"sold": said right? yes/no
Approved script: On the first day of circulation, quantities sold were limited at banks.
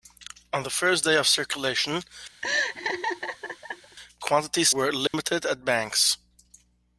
no